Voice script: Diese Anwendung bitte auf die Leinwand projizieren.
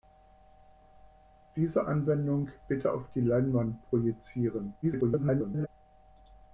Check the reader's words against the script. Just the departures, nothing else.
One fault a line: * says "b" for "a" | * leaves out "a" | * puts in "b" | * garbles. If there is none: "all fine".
* garbles